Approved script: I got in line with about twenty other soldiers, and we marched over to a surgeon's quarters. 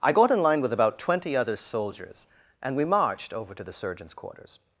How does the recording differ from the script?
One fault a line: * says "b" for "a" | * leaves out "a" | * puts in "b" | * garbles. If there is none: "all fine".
* says "the" for "a"